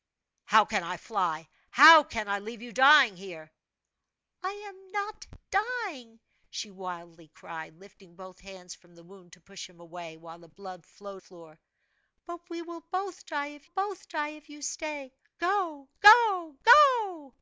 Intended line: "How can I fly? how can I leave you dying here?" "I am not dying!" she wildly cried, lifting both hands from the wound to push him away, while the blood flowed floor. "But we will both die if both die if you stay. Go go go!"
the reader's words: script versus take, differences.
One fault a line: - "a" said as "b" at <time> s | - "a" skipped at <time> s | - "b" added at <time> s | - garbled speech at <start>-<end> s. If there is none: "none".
none